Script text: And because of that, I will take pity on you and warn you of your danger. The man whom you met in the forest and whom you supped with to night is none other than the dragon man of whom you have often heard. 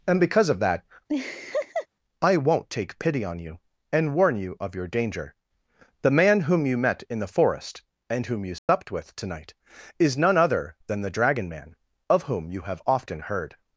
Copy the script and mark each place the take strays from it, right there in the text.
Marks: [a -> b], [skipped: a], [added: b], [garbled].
And because of that, I [will -> won't] take pity on you and warn you of your danger. The man whom you met in the forest and whom you supped with to night is none other than the dragon man of whom you have often heard.